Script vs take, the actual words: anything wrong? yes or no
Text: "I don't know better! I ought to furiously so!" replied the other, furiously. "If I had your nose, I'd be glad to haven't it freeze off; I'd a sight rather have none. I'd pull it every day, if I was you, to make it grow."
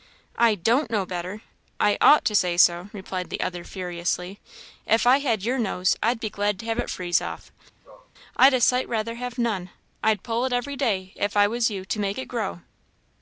yes